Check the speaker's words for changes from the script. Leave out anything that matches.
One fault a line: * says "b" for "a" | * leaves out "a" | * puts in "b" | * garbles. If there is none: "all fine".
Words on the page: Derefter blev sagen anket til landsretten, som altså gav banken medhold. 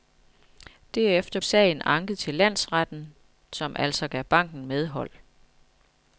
* leaves out "blev"